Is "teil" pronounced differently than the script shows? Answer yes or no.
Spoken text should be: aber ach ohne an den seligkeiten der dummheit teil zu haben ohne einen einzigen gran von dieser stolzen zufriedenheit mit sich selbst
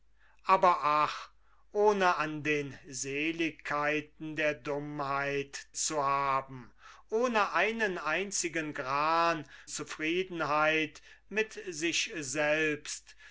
yes